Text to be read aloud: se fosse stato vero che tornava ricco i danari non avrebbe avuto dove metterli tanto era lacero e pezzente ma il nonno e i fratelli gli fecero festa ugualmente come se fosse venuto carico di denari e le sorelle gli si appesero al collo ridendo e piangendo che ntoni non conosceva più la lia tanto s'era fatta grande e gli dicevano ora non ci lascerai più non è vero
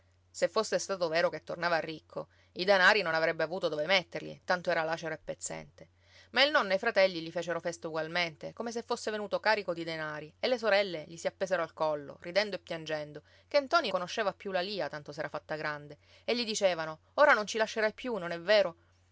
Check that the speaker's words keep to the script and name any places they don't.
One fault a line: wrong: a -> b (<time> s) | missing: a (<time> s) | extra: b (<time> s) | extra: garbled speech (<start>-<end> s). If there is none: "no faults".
missing: non (13.9 s)